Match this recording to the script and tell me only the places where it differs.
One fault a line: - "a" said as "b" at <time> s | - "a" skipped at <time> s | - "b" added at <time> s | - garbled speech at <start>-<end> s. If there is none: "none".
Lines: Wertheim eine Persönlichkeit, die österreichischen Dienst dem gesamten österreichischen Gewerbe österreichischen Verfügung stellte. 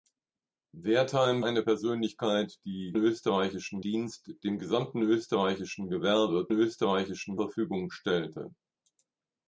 none